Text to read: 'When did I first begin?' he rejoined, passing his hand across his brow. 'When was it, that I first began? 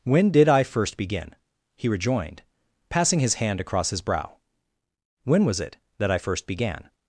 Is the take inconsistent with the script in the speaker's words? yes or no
no